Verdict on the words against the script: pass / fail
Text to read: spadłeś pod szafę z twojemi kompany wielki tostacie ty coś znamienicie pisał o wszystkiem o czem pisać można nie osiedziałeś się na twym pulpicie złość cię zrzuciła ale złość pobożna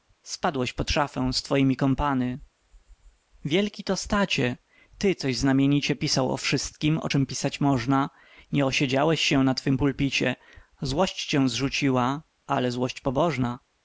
pass